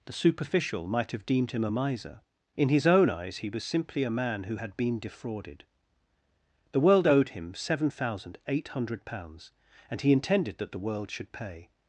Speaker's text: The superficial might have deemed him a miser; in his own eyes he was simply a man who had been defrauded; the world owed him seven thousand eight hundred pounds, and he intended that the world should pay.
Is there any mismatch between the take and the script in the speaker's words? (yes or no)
no